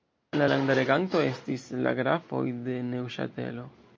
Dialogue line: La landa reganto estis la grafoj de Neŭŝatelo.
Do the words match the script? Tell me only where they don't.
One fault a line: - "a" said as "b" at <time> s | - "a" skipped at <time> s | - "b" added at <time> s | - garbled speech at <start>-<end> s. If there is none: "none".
none